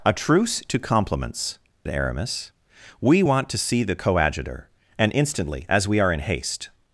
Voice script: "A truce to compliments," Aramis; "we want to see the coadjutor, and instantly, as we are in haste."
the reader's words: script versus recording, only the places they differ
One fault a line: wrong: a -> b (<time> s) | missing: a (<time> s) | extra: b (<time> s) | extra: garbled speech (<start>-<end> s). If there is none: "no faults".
no faults